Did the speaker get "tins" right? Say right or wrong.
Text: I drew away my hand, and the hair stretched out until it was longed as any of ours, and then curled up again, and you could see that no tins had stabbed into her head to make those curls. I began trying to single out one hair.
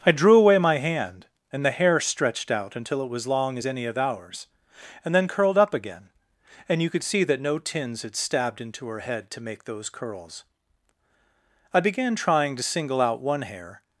right